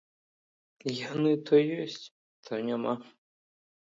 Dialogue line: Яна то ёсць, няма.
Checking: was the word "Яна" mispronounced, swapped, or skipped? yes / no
yes